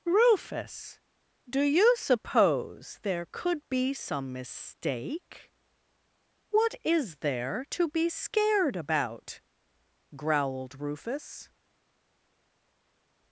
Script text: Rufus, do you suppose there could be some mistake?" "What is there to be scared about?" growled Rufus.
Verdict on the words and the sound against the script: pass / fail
pass